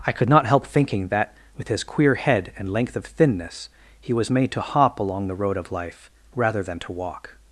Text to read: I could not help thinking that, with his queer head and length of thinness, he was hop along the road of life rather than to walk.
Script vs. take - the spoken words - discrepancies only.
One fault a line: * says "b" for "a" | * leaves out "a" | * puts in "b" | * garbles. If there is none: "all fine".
* puts in "made to"